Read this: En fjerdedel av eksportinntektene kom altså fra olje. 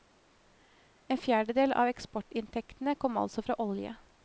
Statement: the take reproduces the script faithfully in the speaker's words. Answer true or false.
true